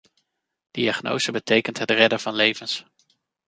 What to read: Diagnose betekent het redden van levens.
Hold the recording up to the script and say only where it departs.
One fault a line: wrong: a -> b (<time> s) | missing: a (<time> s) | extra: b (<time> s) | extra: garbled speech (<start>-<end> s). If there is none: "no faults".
no faults